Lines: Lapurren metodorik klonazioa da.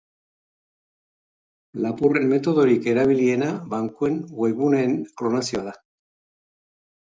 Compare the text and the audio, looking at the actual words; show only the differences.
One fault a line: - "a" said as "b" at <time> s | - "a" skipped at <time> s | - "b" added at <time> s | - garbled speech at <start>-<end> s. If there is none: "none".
- "erabiliena bankuen webguneen" added at 3.0 s